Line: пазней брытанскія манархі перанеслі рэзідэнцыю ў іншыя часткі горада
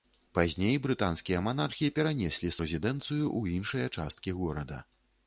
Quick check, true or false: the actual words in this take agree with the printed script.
true